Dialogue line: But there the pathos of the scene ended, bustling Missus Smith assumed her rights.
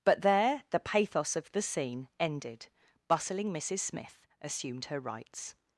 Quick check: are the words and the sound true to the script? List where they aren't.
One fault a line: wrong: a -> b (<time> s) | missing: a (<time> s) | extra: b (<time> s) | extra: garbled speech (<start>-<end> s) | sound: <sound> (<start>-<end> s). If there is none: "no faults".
no faults